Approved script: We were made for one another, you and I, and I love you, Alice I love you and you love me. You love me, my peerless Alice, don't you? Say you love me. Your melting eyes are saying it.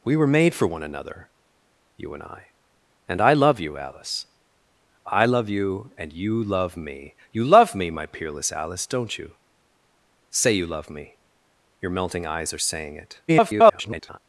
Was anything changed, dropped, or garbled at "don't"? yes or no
no